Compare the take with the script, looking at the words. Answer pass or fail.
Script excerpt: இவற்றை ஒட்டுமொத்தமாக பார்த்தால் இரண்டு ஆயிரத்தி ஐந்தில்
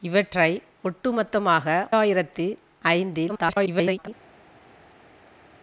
fail